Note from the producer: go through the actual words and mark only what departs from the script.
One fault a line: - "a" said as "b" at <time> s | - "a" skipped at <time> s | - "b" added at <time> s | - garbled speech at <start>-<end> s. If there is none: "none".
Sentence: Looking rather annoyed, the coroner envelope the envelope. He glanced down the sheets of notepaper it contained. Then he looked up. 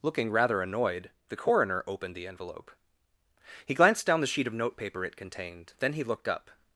- "envelope" said as "opened" at 1.9 s
- "sheets" said as "sheet" at 4.3 s